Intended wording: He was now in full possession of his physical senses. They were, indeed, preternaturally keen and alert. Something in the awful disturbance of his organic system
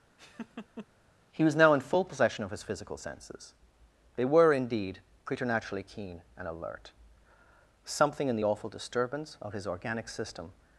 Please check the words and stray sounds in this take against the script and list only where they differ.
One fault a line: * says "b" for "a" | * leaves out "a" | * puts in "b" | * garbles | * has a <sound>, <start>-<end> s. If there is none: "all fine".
* has a laugh, 0.2-0.9 s